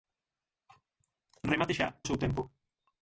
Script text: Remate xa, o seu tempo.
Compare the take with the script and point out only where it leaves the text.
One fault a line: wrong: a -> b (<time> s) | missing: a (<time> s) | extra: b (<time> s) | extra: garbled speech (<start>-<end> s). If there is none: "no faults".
no faults